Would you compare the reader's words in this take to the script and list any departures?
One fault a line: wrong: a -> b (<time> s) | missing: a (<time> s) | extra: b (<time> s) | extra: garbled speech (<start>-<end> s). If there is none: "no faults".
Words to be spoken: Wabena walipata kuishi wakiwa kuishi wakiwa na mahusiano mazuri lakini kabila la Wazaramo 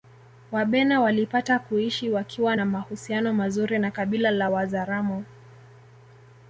missing: kuishi wakiwa (2.5 s)
wrong: lakini -> na (3.8 s)